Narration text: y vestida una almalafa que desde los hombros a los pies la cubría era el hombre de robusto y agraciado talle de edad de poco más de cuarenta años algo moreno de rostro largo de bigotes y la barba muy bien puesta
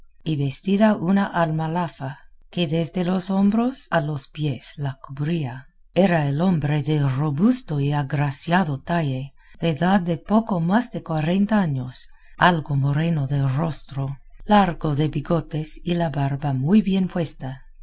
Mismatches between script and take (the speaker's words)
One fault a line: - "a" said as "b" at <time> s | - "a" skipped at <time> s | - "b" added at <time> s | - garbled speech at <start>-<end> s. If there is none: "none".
none